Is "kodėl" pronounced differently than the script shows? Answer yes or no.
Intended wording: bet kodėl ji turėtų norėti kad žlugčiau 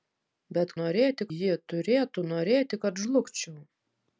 yes